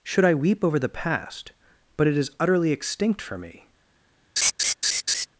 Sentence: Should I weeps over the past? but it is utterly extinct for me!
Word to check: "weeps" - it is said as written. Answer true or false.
false